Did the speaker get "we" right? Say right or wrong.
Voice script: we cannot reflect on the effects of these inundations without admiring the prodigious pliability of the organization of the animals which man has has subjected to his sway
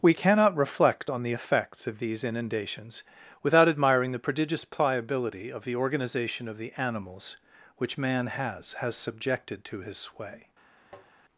right